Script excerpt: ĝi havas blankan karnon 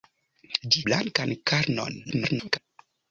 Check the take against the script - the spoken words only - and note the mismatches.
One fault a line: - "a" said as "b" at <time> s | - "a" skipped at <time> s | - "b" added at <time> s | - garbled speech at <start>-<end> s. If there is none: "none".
- "havas" skipped at 0.8 s
- garbled speech at 2.0-2.6 s